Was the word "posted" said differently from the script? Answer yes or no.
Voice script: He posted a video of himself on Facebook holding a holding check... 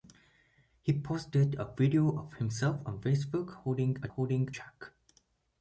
no